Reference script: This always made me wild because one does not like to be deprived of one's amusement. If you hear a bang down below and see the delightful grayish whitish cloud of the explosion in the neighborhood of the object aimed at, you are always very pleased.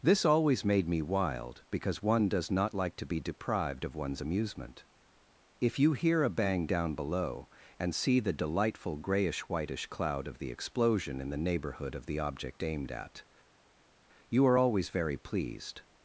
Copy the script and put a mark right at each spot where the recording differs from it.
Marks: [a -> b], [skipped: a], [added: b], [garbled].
This always made me wild because one does not like to be deprived of one's amusement. If you hear a bang down below and see the delightful grayish whitish cloud of the explosion in the neighborhood of the object aimed at, you are always very pleased.